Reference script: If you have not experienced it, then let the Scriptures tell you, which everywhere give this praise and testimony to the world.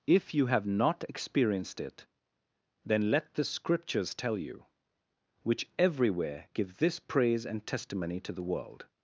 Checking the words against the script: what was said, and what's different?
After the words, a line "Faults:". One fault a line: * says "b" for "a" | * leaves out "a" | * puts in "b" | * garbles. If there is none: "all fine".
If you have not experienced it, then let the Scriptures tell you, which everywhere give this praise and testimony to the world.
Faults:
all fine